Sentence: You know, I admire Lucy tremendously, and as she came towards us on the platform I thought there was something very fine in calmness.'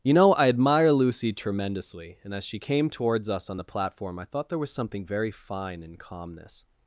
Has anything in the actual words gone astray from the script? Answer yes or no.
no